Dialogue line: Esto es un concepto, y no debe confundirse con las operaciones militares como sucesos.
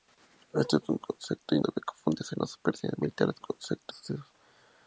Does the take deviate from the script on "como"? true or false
true